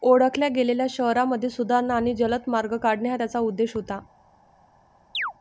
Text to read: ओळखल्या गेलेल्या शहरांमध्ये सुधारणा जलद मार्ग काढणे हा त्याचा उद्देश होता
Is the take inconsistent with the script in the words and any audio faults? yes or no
yes